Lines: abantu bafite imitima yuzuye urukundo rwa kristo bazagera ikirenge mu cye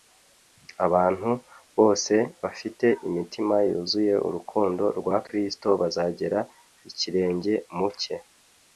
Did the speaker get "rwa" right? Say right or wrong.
right